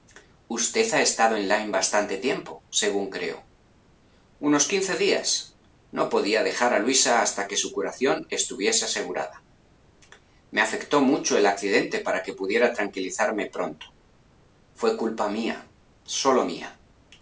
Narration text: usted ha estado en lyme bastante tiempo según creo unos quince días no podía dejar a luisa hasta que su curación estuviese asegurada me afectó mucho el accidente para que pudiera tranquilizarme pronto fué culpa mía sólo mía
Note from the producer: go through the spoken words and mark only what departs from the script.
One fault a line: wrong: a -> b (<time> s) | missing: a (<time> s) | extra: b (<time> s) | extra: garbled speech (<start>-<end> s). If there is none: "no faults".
no faults